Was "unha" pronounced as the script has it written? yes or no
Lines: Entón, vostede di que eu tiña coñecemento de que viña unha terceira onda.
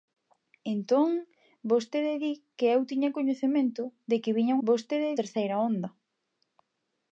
no